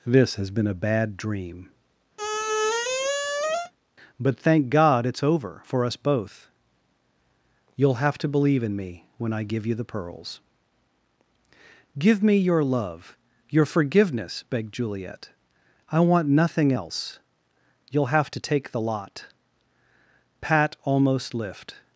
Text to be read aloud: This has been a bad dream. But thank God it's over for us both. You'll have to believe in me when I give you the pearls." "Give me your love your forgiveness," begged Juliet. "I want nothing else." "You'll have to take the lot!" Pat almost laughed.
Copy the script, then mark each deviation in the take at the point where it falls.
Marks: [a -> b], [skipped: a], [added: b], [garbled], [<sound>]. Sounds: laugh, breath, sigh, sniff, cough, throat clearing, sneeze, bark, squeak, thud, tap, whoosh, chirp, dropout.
This has been a bad dream. [squeak] But thank God it's over for us both. You'll have to believe in me when I give you the pearls." "Give me your love your forgiveness," begged Juliet. "I want nothing else." "You'll have to take the lot!" Pat almost [laughed. -> lift]